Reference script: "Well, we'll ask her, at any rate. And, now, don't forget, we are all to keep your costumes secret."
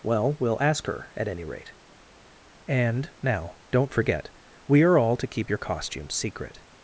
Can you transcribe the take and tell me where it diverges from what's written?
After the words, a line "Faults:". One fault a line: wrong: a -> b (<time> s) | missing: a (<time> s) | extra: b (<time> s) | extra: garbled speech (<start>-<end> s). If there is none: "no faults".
"Well, we'll ask her, at any rate. And, now, don't forget, we are all to keep your costumes secret."
Faults:
no faults